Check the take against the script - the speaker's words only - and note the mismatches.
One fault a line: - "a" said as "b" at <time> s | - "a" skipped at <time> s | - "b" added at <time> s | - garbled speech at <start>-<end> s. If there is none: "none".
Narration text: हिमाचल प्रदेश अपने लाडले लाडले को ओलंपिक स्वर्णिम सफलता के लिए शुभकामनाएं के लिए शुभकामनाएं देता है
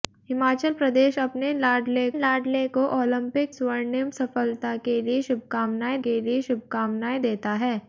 none